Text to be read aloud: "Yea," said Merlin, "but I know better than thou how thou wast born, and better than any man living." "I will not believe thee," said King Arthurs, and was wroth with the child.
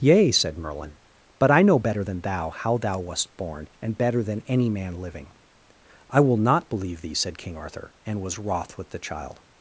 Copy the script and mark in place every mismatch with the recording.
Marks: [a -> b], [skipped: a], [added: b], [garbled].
"Yea," said Merlin, "but I know better than thou how thou wast born, and better than any man living." "I will not believe thee," said King [Arthurs, -> Arthur] and was wroth with the child.